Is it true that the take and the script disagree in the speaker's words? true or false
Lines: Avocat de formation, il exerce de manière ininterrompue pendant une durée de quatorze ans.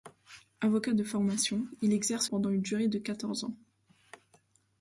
true